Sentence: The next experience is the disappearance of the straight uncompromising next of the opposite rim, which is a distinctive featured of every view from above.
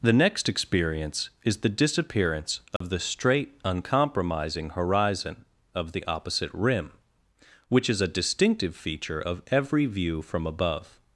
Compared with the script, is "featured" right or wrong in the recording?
wrong